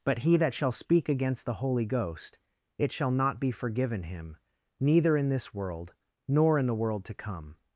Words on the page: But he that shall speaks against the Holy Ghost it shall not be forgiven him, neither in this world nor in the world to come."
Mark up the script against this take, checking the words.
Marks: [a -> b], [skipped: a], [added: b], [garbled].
But he that shall [speaks -> speak] against the Holy Ghost it shall not be forgiven him, neither in this world nor in the world to come."